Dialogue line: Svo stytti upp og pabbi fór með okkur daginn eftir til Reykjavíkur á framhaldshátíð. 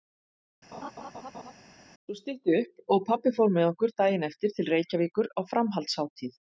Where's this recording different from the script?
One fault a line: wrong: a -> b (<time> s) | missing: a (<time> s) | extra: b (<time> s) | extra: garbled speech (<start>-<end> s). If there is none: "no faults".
no faults